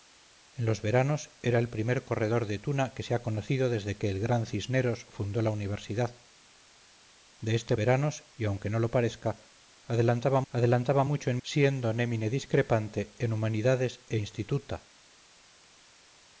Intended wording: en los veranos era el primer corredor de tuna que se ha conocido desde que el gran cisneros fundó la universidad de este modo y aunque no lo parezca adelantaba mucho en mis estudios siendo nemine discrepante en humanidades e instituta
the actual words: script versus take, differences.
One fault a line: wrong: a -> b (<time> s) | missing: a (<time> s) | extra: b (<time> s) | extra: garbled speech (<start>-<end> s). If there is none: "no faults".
wrong: modo -> veranos (7.7 s)
extra: adelantaba (10.5 s)
missing: mis estudios (11.4 s)